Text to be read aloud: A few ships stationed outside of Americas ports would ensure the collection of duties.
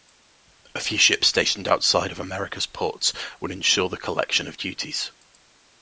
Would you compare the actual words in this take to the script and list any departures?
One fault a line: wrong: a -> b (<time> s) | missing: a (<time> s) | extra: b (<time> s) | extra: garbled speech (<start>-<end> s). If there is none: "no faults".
no faults